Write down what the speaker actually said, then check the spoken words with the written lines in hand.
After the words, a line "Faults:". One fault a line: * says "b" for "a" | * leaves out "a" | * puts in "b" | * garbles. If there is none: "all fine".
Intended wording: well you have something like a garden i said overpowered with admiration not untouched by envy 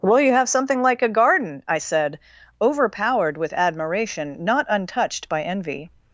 well you have something like a garden i said overpowered with admiration not untouched by envy
Faults:
all fine